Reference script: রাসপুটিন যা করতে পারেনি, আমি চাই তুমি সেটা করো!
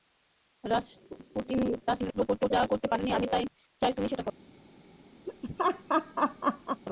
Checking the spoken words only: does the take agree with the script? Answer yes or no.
no